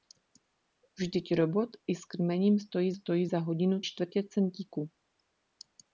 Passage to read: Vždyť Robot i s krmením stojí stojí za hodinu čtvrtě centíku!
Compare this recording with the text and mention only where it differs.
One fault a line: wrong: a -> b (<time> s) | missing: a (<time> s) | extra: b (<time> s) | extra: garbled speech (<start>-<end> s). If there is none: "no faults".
no faults